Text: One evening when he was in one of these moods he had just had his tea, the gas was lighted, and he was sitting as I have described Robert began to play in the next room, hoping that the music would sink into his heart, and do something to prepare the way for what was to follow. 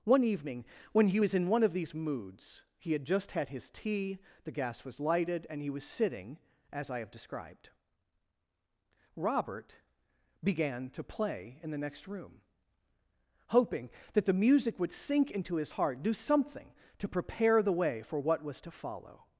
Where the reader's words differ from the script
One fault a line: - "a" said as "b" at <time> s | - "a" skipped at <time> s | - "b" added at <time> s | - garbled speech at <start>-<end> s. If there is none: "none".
- "and" skipped at 16.0 s